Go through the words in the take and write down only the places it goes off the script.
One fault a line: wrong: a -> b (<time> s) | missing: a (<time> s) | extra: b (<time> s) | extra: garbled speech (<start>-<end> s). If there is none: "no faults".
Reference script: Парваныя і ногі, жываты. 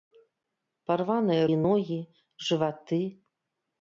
no faults